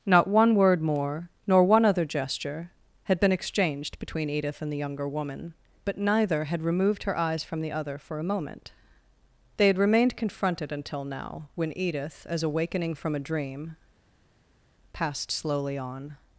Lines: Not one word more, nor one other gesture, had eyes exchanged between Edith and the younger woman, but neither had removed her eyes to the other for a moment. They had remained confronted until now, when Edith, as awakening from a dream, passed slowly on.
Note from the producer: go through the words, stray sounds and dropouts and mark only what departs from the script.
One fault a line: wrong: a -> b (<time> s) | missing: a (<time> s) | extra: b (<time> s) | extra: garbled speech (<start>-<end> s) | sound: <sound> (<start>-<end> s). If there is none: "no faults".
wrong: eyes -> been (3.2 s)
wrong: to -> from (7.4 s)